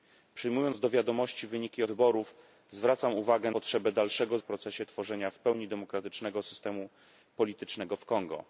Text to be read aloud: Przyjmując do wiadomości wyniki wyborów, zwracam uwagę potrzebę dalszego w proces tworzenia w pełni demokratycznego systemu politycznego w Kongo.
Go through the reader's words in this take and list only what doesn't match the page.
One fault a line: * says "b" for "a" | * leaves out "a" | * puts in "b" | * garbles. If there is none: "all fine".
all fine